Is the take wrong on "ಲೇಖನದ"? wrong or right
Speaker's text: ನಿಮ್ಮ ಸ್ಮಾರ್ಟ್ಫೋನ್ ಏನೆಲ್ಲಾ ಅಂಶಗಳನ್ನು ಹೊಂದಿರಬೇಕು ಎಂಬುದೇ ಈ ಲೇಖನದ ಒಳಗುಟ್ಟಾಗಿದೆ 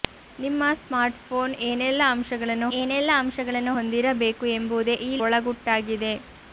wrong